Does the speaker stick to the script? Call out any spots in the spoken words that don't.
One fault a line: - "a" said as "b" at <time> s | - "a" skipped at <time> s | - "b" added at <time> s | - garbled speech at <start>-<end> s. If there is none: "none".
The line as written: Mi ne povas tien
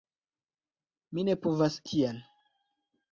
none